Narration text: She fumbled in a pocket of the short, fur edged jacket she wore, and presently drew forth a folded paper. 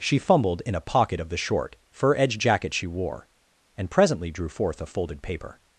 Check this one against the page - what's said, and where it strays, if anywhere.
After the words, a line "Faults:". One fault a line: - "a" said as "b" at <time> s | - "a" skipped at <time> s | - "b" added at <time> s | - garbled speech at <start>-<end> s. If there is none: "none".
She fumbled in a pocket of the short, fur edged jacket she wore, and presently drew forth a folded paper.
Faults:
none